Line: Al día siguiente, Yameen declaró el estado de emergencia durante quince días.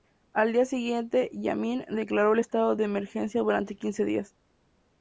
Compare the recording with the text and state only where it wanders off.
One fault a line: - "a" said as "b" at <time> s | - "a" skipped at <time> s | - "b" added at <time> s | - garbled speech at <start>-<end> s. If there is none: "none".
none